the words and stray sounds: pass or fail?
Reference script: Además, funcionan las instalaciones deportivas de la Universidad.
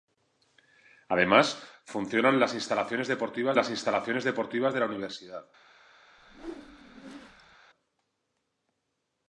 fail